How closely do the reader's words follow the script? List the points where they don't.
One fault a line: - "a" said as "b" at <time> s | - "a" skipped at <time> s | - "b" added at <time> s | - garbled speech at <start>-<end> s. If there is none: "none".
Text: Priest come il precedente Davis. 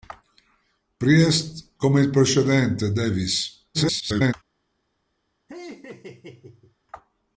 - garbled speech at 3.7-4.3 s